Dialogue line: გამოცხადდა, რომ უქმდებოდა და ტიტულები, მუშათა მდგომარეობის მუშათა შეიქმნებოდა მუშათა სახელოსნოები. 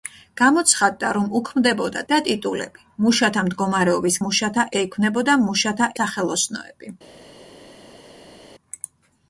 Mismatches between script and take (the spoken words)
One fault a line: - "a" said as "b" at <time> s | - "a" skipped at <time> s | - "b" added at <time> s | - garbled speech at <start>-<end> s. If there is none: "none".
none